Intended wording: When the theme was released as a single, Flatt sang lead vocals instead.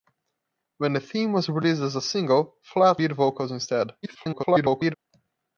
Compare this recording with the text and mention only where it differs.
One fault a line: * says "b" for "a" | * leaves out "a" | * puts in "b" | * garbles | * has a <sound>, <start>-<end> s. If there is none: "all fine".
* leaves out "sang"
* garbles